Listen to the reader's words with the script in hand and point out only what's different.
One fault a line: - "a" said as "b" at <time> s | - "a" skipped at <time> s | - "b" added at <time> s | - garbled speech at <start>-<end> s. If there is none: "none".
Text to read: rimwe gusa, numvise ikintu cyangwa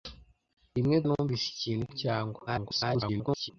- "gusa" skipped at 1.0 s
- garbled speech at 2.5-3.5 s